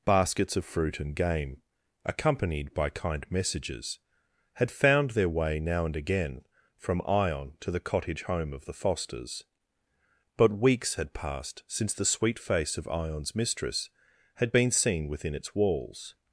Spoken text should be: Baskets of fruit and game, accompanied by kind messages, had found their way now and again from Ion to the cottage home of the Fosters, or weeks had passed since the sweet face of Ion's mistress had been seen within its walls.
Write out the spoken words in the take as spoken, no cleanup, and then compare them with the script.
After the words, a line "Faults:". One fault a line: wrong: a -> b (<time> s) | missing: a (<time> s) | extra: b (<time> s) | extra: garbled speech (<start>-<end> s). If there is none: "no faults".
Baskets of fruit and game, accompanied by kind messages, had found their way now and again from Ion to the cottage home of the Fosters, but weeks had passed since the sweet face of Ion's mistress had been seen within its walls.
Faults:
wrong: or -> but (10.4 s)